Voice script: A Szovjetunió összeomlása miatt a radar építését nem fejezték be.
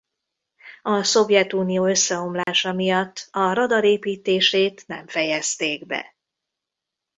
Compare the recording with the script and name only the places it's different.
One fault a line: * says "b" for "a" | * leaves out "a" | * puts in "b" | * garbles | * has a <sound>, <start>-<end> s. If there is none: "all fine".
* has a dropout, 2.4-2.5 s